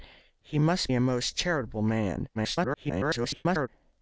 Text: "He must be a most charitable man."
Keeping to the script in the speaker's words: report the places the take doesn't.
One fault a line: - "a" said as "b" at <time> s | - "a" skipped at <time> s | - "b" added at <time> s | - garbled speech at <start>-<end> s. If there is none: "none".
- "be" skipped at 0.9 s
- garbled speech at 2.3-3.7 s